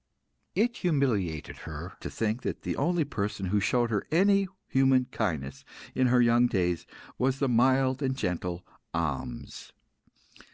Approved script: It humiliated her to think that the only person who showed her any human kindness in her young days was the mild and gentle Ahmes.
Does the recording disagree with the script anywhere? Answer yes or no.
no